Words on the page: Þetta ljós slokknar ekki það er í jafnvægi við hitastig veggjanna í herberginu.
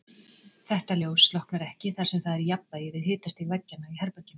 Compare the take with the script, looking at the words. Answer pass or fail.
fail